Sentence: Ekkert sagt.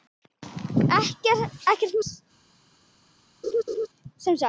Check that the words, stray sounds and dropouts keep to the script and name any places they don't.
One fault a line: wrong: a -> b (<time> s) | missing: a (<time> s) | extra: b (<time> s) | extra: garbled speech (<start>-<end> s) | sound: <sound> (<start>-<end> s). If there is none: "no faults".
sound: laugh (3.4-3.9 s)